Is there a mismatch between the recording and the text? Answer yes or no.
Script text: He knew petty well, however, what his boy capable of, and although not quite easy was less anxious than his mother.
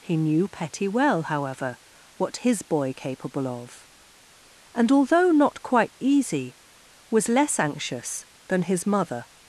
no